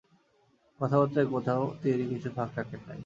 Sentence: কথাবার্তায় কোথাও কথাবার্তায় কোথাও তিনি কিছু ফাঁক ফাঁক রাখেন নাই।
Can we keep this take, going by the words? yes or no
no